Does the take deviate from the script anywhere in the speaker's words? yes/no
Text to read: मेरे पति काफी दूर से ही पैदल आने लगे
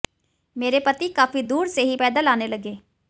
no